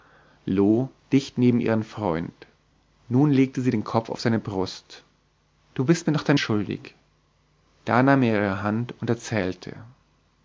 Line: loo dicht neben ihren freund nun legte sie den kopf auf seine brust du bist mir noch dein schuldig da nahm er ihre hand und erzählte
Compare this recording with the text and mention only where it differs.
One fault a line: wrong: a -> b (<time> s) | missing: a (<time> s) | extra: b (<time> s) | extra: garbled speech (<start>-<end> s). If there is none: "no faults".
no faults